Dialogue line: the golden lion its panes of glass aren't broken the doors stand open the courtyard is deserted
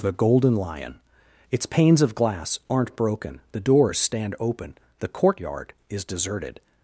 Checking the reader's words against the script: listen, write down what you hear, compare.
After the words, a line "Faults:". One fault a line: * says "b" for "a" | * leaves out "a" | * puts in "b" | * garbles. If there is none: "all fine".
the golden lion its panes of glass aren't broken the doors stand open the courtyard is deserted
Faults:
all fine